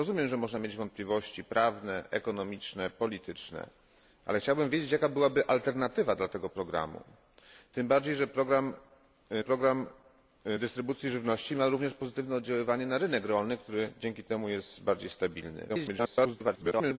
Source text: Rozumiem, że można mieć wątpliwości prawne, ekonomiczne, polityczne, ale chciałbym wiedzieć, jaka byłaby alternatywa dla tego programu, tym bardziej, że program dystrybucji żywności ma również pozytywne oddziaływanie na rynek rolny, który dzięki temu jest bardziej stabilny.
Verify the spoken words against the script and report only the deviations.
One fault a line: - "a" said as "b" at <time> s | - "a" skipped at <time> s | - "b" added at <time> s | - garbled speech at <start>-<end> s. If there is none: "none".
- "program" added at 9.4 s
- garbled speech at 15.7-17.0 s